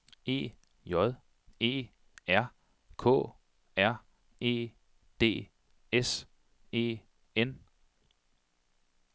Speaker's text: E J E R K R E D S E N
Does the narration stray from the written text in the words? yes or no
no